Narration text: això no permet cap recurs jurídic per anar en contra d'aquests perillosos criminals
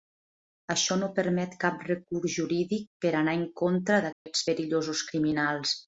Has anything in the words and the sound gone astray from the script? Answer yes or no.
yes